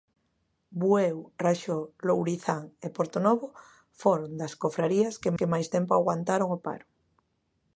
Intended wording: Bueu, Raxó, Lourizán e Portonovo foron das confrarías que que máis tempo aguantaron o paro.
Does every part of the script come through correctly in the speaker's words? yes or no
yes